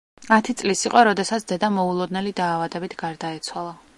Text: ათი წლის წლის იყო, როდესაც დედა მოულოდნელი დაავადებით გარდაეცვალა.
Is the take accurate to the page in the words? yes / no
no